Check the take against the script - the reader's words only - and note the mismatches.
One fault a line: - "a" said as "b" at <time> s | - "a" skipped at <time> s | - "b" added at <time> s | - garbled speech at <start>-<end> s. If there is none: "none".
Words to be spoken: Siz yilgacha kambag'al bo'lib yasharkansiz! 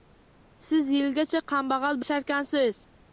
- "bo'lib" skipped at 2.0 s